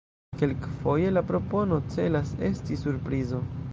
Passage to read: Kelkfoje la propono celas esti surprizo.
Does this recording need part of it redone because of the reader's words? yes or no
no